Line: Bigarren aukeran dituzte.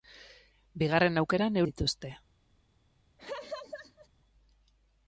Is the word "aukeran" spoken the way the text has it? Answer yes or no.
yes